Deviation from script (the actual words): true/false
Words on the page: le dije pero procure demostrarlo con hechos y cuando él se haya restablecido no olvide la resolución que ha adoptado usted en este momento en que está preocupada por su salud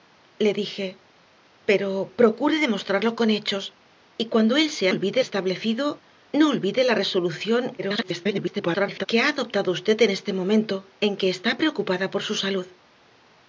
true